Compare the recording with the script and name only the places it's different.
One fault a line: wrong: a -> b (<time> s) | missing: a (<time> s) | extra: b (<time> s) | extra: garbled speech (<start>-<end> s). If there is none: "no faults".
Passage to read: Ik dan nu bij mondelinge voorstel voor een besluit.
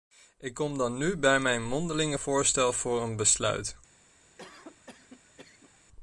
extra: kom (0.5 s)
extra: mijn (1.4 s)